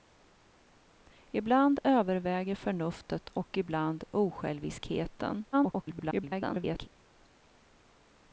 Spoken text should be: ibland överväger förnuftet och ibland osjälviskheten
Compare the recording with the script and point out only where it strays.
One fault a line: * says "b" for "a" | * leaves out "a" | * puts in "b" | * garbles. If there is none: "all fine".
* garbles